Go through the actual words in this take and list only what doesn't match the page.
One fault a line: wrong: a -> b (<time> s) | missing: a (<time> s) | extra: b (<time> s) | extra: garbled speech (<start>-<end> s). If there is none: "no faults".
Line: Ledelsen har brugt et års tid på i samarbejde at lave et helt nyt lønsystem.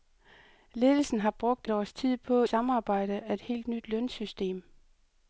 missing: et (1.7 s)
missing: i (2.4 s)
missing: lave (3.4 s)